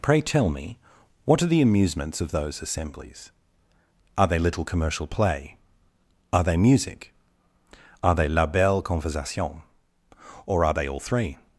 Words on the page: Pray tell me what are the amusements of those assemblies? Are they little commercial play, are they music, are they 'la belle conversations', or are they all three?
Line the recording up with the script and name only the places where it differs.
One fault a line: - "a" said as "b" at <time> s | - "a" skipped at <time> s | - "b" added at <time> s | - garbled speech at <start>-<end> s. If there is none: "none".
- "conversations" said as "conversation" at 8.8 s